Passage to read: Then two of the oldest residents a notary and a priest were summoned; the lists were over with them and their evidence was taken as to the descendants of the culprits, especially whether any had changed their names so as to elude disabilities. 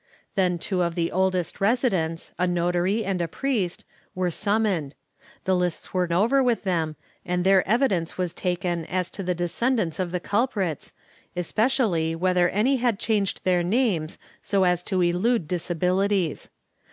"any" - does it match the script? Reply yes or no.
yes